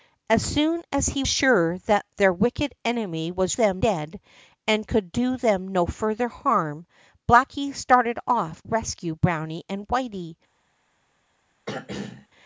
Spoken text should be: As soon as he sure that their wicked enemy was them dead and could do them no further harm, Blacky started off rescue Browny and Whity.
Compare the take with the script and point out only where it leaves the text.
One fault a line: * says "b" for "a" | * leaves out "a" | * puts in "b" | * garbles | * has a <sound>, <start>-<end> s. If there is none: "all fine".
* has a throat clearing, 11.7-12.3 s